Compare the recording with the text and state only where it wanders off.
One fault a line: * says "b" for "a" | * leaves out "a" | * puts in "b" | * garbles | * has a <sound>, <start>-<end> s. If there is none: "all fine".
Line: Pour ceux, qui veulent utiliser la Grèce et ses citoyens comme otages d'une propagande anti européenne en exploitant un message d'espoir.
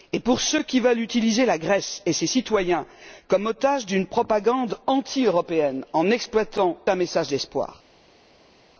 all fine